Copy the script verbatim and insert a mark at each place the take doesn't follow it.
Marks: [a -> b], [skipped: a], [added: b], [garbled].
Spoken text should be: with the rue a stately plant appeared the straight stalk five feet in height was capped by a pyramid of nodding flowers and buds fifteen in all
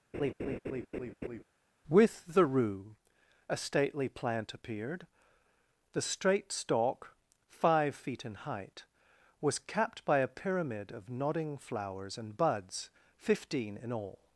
with the rue a stately plant appeared the straight stalk five feet in height was capped by a pyramid of nodding flowers and buds fifteen in all